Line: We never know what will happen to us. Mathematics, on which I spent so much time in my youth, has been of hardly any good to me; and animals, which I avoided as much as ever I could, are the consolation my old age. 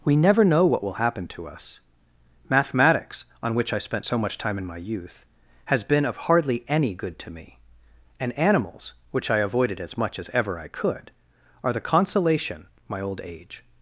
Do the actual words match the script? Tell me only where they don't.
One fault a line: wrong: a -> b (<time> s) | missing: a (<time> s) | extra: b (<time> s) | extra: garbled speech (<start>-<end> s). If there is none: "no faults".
no faults